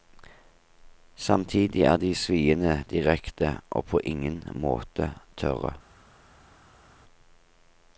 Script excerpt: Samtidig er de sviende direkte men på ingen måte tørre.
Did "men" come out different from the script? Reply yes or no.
yes